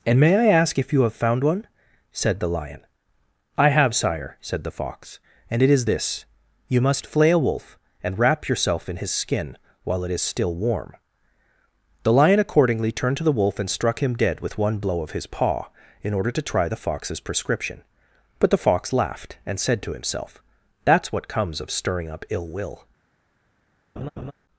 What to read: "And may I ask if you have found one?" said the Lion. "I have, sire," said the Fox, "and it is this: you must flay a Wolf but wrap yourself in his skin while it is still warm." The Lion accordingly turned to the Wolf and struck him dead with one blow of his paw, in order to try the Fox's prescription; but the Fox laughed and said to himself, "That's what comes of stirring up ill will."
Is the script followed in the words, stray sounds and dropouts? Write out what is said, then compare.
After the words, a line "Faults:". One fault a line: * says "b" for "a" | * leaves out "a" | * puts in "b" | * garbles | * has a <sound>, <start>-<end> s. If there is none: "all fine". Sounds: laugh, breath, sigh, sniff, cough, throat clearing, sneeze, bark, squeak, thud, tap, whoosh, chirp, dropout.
"And may I ask if you have found one?" said the Lion. "I have, sire," said the Fox, "and it is this: you must flay a Wolf and wrap yourself in his skin while it is still warm." The Lion accordingly turned to the Wolf and struck him dead with one blow of his paw, in order to try the Fox's prescription; but the Fox laughed and said to himself, "That's what comes of stirring up ill will."
Faults:
* says "and" for "but"
* has a laugh, 24.0-24.3 s